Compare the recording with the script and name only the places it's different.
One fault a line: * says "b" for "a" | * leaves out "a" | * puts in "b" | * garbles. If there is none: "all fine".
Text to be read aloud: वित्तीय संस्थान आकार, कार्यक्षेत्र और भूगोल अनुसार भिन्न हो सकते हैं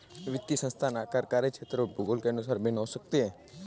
* puts in "के"